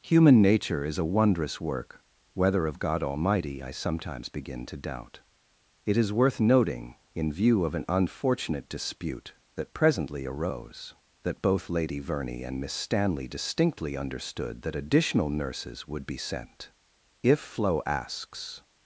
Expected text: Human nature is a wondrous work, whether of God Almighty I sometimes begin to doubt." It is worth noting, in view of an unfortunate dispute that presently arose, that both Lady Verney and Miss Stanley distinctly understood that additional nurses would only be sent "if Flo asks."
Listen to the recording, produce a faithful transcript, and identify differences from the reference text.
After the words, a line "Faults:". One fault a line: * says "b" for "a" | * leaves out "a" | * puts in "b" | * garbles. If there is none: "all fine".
Human nature is a wondrous work, whether of God Almighty I sometimes begin to doubt." It is worth noting, in view of an unfortunate dispute that presently arose, that both Lady Verney and Miss Stanley distinctly understood that additional nurses would be sent "if Flo asks."
Faults:
* leaves out "only"